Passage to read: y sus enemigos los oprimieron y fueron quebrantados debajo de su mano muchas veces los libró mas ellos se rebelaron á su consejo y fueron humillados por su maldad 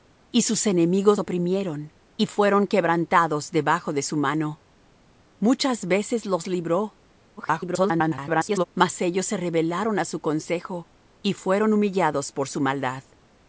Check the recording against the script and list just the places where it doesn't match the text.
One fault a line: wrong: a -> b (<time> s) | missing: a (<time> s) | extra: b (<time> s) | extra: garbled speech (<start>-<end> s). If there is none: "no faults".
missing: los (1.2 s)
extra: garbled speech (7.4-8.6 s)